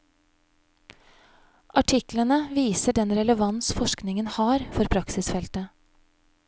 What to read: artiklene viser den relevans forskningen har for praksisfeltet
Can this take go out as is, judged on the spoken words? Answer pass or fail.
pass